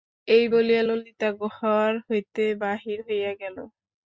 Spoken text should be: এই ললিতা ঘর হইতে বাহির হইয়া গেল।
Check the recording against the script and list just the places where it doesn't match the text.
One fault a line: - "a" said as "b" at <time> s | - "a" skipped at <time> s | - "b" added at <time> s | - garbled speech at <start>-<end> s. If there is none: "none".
- "বলিয়া" added at 0.5 s